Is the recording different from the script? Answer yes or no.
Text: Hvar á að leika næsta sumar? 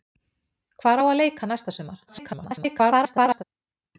yes